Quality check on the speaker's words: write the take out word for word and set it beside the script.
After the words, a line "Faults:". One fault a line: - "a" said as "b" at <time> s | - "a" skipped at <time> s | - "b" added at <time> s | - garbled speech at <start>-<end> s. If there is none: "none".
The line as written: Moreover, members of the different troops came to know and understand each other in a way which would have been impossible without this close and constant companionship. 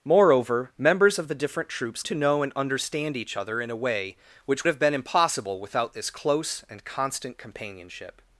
Moreover, members of the different troops to know and understand each other in a way which have been impossible without this close and constant companionship.
Faults:
- "came" skipped at 2.0 s
- "would" skipped at 4.6 s